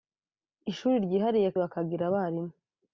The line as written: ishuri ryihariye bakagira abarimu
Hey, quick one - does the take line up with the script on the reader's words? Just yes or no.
yes